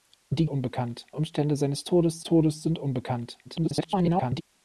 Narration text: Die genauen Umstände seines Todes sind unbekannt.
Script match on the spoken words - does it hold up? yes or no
no